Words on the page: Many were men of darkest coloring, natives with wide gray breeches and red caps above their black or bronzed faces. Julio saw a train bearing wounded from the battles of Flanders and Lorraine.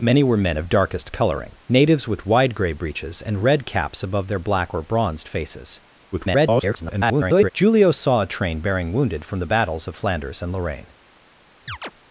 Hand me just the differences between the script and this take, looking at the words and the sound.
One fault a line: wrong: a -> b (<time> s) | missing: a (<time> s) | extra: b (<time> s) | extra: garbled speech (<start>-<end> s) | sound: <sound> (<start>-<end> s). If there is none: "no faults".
extra: garbled speech (6.1-7.5 s)
sound: chirp (11.7-11.9 s)